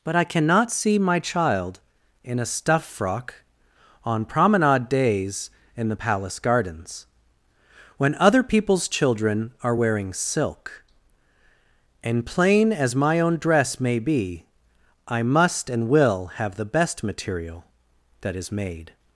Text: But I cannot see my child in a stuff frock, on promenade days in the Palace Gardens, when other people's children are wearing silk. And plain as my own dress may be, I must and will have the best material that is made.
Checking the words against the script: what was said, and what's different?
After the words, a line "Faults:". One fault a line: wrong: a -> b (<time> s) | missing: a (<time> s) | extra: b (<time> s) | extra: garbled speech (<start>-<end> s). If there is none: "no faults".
But I cannot see my child in a stuff frock, on promenade days in the Palace Gardens, when other people's children are wearing silk. And plain as my own dress may be, I must and will have the best material that is made.
Faults:
no faults